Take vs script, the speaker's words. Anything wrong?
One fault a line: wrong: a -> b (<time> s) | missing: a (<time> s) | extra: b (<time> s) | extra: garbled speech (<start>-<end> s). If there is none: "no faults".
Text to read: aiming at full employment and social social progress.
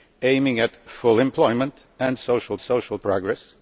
no faults